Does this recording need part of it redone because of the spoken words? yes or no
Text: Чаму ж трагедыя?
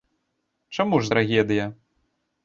no